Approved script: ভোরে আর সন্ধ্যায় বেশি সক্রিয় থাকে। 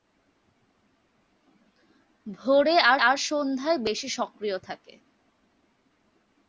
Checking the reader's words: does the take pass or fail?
fail